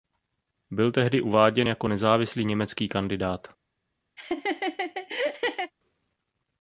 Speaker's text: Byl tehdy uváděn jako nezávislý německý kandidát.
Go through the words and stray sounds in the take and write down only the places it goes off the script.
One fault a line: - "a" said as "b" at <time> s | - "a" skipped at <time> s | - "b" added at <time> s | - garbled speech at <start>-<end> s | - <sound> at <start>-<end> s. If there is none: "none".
- laugh at 4.2-5.7 s